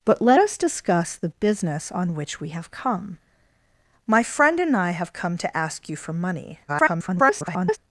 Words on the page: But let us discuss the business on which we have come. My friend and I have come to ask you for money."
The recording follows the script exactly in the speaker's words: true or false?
false